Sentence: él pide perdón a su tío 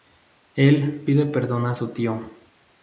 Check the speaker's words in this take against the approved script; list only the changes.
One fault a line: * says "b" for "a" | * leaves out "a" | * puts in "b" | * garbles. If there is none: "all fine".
all fine